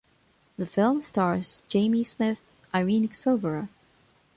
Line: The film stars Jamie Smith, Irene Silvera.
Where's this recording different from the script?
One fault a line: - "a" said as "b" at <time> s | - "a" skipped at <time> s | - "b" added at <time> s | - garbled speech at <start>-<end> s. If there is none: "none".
none